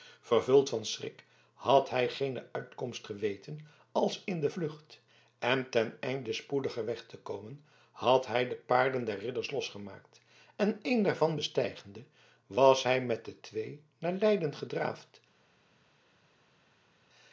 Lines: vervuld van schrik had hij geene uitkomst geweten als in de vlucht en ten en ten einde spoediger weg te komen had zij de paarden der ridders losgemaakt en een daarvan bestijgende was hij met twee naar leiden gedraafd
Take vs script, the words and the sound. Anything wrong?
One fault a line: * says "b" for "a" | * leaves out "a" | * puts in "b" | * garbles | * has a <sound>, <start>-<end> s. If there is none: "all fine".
* leaves out "en ten"
* says "hij" for "zij"
* puts in "de"